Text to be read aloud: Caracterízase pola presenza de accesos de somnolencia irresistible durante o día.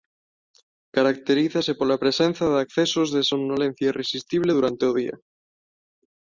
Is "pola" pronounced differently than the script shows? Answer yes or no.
no